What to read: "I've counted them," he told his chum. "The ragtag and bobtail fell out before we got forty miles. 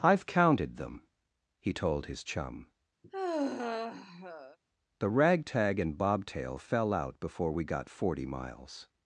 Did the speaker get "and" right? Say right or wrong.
right